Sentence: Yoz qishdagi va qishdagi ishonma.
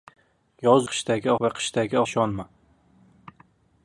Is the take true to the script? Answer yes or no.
yes